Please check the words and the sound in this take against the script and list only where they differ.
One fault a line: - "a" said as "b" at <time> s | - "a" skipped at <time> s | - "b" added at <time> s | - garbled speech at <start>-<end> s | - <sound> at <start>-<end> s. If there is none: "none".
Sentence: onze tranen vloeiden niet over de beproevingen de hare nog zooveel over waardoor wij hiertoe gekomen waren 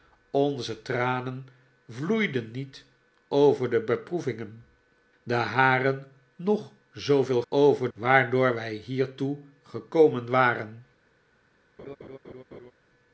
- laugh at 11.8-12.7 s